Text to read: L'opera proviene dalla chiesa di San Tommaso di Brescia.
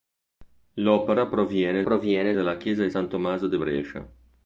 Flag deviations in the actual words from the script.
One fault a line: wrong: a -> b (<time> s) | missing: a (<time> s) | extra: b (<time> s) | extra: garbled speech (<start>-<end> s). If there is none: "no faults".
extra: proviene (1.8 s)